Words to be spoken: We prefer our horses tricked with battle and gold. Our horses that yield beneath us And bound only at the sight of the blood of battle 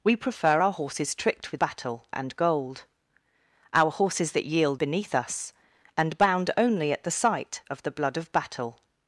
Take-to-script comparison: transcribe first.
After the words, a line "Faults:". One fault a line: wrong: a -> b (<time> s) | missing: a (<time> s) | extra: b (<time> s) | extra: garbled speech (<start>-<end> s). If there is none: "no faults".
We prefer our horses tricked with battle and gold. Our horses that yield beneath us And bound only at the sight of the blood of battle
Faults:
no faults